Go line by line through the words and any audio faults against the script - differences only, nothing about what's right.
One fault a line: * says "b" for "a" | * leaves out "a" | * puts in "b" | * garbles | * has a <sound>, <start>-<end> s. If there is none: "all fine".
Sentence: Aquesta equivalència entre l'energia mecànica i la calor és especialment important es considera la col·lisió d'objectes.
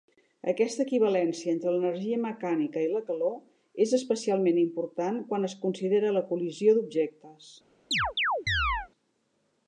* puts in "quan"
* has a chirp, 7.9-8.9 s